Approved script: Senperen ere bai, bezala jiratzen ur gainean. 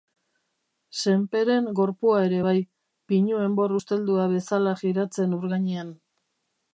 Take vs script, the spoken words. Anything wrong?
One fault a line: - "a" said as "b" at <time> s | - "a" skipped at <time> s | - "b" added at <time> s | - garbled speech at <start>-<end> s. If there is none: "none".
- "gorpua" added at 1.8 s
- "pinu enbor usteldua" added at 3.1 s